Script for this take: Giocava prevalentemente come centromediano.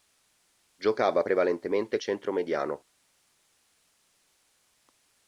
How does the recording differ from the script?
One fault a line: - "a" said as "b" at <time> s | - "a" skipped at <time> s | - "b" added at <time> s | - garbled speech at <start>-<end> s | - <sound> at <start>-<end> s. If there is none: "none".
- "come" skipped at 2.0 s